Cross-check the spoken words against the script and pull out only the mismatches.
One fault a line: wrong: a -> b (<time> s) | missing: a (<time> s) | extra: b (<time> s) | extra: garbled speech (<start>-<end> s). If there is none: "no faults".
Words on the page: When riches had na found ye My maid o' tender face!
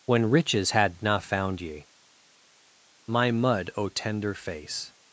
wrong: maid -> mud (3.3 s)